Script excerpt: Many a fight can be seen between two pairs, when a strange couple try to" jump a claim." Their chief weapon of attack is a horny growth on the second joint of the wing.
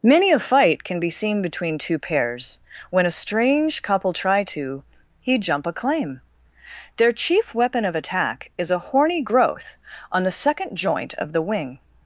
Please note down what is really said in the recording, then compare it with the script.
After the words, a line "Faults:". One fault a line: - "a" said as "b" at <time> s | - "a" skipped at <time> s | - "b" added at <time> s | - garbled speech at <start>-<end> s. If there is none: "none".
Many a fight can be seen between two pairs, when a strange couple try to" he jump a claim." Their chief weapon of attack is a horny growth on the second joint of the wing.
Faults:
- "he" added at 5.2 s